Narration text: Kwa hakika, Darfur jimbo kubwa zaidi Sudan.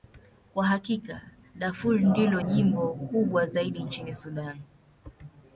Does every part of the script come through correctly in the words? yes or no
no